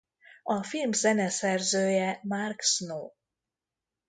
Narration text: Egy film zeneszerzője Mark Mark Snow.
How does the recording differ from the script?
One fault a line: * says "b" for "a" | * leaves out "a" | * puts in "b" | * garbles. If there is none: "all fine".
* says "A" for "Egy"
* leaves out "Mark"